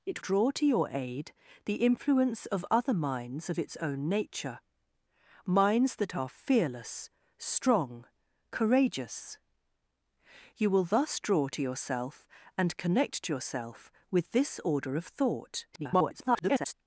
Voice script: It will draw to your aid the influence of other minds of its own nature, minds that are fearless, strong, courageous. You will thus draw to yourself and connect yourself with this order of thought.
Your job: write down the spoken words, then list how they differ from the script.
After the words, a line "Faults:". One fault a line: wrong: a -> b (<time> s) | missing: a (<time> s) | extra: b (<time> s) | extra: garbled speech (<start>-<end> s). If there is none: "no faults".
It draw to your aid the influence of other minds of its own nature, minds that are fearless, strong, courageous. You will thus draw to yourself and connect yourself with this order of thought. [garbled]
Faults:
missing: will (0.2 s)
extra: garbled speech (15.7-16.7 s)